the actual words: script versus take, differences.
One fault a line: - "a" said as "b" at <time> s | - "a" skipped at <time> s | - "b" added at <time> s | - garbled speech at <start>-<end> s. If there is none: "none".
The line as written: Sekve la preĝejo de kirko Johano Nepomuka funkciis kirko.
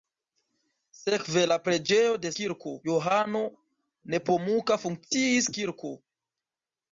none